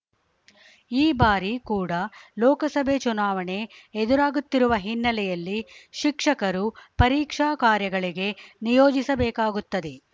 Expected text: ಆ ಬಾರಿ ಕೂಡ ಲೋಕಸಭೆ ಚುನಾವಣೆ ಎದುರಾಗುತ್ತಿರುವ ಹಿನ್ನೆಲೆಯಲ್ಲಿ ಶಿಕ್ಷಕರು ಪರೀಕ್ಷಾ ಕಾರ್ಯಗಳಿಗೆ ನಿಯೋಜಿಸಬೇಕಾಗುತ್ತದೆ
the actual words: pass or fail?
fail